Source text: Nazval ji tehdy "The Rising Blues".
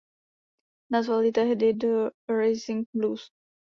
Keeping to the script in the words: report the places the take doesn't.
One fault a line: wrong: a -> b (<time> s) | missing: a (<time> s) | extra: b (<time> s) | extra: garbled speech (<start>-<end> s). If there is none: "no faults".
no faults